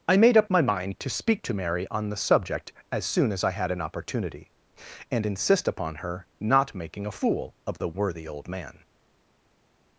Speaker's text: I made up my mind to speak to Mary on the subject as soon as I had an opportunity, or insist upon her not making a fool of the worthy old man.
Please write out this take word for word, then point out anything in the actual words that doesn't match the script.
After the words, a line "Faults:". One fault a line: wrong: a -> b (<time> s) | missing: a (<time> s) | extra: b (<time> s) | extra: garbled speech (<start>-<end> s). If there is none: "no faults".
I made up my mind to speak to Mary on the subject as soon as I had an opportunity, and insist upon her not making a fool of the worthy old man.
Faults:
wrong: or -> and (5.1 s)